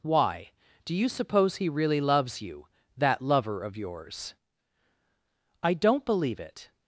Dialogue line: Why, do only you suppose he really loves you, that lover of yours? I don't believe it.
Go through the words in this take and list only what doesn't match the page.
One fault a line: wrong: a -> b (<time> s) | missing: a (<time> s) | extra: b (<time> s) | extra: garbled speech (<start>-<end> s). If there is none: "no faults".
missing: only (0.9 s)